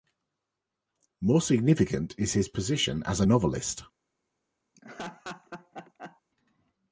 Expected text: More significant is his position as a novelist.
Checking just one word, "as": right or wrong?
right